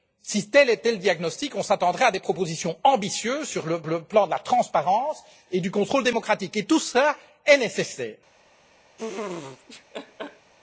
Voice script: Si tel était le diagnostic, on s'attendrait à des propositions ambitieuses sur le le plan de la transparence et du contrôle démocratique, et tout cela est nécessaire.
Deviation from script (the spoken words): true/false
false